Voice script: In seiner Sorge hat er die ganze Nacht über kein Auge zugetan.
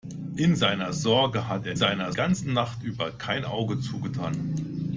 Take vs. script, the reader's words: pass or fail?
fail